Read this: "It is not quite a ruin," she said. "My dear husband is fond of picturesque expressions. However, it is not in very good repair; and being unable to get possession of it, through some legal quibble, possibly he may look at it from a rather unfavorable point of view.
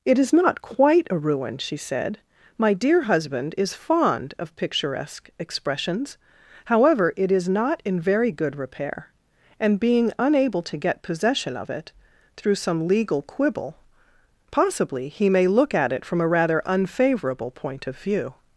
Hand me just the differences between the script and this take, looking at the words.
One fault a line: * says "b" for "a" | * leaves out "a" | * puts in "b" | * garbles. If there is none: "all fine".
all fine